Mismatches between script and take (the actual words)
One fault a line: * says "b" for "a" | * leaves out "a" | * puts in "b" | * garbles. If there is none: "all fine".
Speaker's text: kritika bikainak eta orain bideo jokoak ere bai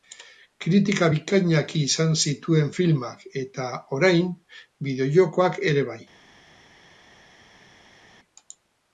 * puts in "izan zituen filmak"